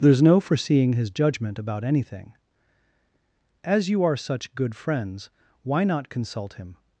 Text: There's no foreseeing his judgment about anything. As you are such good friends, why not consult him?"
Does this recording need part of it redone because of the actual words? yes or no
no